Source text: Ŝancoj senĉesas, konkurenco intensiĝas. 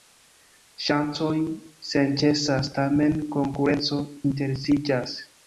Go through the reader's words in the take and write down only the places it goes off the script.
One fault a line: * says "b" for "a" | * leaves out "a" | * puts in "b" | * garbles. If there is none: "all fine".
* puts in "tamen"